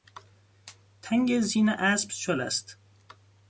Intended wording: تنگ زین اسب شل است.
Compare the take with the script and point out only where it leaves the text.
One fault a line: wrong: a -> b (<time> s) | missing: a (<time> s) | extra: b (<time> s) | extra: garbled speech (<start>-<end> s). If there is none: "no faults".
no faults